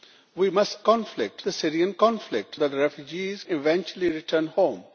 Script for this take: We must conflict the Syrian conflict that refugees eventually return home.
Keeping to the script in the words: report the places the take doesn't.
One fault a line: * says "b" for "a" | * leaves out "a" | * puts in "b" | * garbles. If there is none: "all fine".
all fine